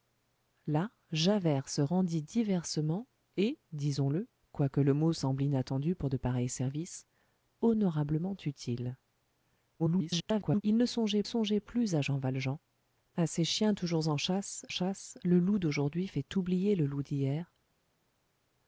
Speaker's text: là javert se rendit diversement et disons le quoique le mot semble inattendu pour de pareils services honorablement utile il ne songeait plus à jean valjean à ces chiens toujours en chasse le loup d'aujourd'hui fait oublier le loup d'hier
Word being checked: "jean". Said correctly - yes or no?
yes